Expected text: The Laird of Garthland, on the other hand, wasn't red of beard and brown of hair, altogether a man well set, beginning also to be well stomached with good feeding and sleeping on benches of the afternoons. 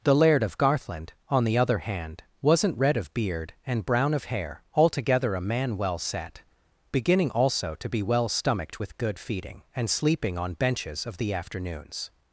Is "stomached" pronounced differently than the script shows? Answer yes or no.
no